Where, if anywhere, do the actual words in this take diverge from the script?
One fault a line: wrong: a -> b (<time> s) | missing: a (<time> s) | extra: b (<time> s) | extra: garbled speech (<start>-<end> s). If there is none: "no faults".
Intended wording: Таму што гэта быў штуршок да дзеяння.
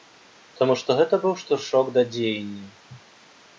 no faults